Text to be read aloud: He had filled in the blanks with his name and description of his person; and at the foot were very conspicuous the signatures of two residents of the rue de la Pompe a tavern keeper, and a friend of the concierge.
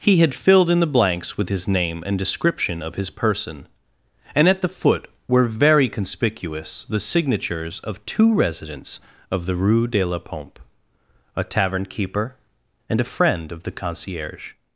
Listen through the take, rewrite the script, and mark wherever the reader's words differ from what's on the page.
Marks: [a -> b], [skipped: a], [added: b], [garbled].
He had filled in the blanks with his name and description of his person; and at the foot were very conspicuous the signatures of two residents of the rue de la Pompe a tavern keeper, and a friend of the concierge.